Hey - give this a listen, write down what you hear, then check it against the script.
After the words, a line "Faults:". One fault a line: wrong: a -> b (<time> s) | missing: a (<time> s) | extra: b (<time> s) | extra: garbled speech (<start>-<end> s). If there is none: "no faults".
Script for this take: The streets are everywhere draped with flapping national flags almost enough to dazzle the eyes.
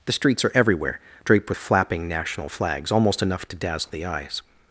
The streets are everywhere draped with flapping national flags almost enough to dazzle the eyes.
Faults:
no faults